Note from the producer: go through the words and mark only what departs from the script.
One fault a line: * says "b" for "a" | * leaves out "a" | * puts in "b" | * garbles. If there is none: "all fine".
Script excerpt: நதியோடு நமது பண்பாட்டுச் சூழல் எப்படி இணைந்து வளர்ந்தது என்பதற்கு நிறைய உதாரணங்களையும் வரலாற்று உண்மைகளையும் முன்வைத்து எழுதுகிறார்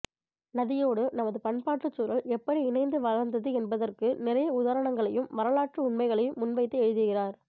all fine